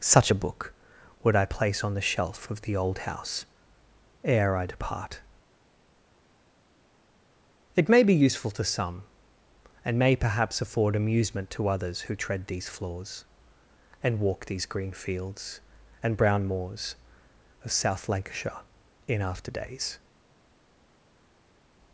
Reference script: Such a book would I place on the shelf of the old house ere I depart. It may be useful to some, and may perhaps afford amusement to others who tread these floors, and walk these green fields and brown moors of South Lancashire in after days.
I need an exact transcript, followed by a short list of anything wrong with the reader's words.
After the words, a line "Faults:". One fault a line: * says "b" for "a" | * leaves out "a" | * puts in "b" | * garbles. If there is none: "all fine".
Such a book would I place on the shelf of the old house ere I depart. It may be useful to some, and may perhaps afford amusement to others who tread these floors, and walk these green fields and brown moors of South Lancashire in after days.
Faults:
all fine